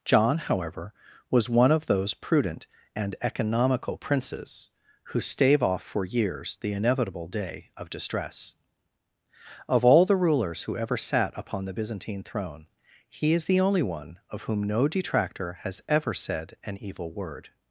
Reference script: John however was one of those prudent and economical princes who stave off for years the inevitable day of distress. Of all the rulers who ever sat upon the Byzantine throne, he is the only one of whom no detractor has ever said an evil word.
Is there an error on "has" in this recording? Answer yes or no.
no